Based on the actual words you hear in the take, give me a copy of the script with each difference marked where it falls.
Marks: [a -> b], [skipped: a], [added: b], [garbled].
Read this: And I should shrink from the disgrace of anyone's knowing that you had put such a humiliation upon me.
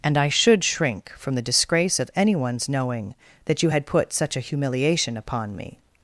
And I should shrink from the disgrace of anyone's knowing that you had put such a humiliation upon me.